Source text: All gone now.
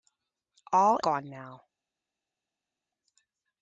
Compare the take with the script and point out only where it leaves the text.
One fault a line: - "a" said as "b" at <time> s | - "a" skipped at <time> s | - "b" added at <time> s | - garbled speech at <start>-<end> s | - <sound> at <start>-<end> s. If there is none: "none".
none